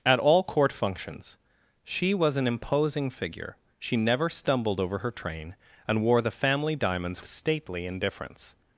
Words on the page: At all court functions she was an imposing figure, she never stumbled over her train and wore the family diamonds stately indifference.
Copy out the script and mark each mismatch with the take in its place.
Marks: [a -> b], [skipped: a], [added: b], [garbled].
At all court functions she was an imposing figure, she never stumbled over her train and wore the family diamonds stately indifference.